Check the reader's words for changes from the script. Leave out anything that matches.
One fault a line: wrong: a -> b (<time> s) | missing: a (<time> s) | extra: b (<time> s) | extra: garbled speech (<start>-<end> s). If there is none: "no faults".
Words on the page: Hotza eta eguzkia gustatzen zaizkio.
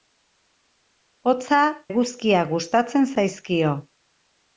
missing: eta (1.6 s)